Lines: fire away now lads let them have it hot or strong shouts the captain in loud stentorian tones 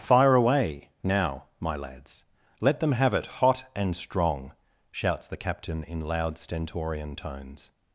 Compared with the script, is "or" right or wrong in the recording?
wrong